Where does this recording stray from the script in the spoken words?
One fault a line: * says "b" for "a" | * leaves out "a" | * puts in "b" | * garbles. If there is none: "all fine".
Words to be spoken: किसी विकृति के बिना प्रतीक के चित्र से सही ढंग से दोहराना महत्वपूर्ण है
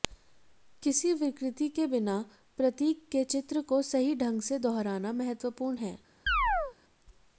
* says "को" for "से"